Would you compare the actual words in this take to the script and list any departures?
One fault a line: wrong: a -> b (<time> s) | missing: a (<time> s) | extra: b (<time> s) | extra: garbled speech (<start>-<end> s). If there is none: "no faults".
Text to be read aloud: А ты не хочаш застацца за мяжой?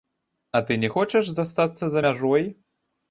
no faults